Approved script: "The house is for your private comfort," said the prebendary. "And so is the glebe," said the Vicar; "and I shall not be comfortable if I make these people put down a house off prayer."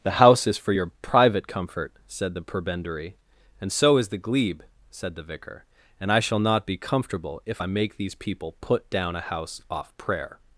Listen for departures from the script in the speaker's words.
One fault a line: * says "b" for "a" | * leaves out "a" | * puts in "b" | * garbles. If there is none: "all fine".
all fine